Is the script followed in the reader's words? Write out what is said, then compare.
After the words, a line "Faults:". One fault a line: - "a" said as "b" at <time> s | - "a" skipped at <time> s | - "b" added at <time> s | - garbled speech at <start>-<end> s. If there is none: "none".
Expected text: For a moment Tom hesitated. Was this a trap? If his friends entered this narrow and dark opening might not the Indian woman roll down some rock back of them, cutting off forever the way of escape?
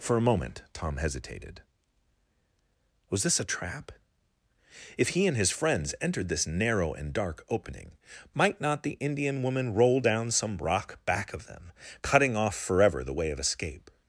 For a moment Tom hesitated. Was this a trap? If he and his friends entered this narrow and dark opening might not the Indian woman roll down some rock back of them, cutting off forever the way of escape?
Faults:
- "he and" added at 5.1 s